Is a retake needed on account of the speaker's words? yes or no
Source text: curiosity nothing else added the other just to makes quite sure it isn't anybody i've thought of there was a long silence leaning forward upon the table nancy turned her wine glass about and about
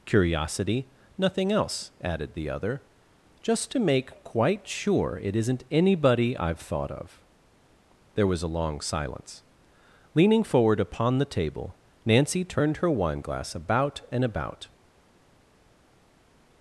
yes